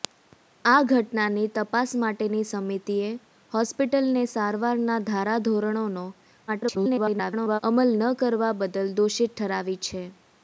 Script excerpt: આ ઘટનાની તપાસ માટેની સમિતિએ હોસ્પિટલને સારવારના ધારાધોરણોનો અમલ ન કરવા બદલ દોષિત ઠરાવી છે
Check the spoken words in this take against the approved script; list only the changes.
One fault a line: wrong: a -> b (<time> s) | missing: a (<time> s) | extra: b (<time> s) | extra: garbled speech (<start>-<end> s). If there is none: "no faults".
extra: garbled speech (6.5-7.6 s)